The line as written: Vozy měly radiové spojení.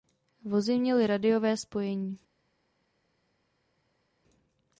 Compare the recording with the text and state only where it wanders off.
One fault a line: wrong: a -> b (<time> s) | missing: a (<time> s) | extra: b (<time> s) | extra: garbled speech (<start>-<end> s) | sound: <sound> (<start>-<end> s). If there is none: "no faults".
no faults